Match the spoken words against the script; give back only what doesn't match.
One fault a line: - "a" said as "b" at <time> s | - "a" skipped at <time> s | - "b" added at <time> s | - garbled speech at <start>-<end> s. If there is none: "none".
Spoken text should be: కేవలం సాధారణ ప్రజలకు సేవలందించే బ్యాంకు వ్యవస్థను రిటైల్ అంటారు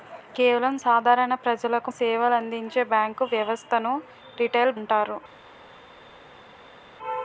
none